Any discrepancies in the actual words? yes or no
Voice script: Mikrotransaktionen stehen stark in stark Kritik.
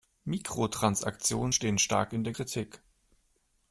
yes